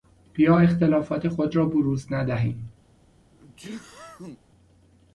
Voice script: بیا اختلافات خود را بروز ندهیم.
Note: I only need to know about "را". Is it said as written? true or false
true